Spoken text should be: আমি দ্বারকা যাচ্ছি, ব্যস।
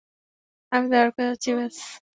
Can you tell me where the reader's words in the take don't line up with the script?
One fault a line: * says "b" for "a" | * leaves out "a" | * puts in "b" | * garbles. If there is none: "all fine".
all fine